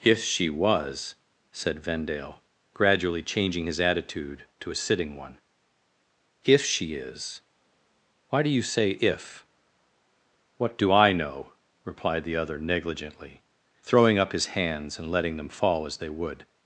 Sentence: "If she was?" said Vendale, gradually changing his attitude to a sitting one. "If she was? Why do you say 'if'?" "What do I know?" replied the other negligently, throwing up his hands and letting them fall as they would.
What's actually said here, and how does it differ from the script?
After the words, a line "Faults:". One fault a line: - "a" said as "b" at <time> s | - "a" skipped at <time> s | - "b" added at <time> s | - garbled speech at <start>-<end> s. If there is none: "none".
"If she was?" said Vendale, gradually changing his attitude to a sitting one. "If she is? Why do you say 'if'?" "What do I know?" replied the other negligently, throwing up his hands and letting them fall as they would.
Faults:
- "was" said as "is" at 7.0 s